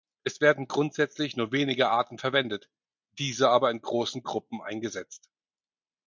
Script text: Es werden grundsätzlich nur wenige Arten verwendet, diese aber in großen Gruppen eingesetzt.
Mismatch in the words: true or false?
false